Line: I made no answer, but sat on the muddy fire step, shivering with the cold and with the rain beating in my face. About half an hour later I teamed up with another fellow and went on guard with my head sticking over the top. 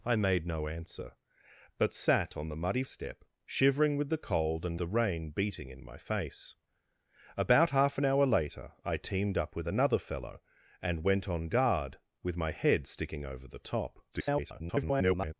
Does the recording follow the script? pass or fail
fail